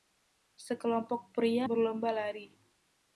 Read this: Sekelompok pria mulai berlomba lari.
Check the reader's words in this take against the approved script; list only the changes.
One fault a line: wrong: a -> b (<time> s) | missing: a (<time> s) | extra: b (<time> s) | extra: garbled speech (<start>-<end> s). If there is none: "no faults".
missing: mulai (1.7 s)